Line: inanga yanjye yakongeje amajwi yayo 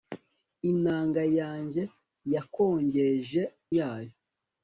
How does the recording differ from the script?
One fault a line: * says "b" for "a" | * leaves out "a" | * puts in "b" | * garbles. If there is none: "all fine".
* leaves out "amajwi"